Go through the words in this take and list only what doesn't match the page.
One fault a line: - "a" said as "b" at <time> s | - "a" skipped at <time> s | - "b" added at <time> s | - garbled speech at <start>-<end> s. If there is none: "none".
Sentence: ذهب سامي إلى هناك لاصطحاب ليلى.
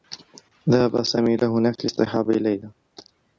none